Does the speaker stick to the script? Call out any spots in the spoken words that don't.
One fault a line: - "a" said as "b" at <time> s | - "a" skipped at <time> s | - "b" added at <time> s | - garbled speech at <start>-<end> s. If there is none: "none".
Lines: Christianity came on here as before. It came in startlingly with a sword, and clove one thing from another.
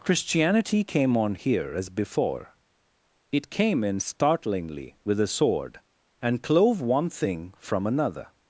none